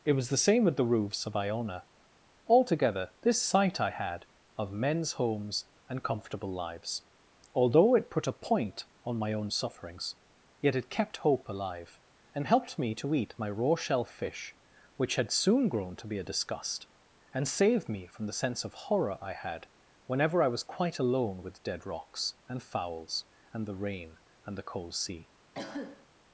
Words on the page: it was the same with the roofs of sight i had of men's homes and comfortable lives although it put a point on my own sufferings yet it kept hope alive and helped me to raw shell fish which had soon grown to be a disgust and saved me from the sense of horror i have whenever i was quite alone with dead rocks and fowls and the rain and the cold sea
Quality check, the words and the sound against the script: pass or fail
fail